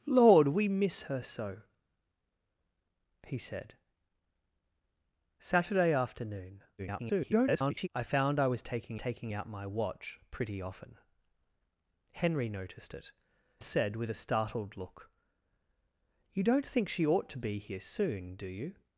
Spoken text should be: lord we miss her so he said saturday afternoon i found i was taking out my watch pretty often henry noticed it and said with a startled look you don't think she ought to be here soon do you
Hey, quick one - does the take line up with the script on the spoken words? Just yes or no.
no